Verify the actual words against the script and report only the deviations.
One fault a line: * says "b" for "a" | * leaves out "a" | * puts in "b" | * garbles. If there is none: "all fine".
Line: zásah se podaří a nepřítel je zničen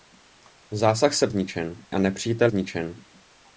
* says "zničen" for "podaří"
* leaves out "je"